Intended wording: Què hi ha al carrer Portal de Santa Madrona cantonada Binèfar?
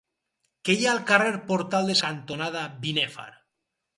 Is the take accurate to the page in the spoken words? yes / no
no